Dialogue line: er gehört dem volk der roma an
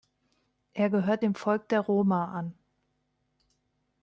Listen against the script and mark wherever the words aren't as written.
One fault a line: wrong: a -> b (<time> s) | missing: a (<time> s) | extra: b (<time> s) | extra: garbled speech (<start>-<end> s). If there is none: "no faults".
no faults